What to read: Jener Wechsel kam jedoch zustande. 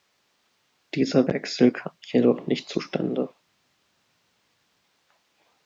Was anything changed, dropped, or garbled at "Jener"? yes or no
yes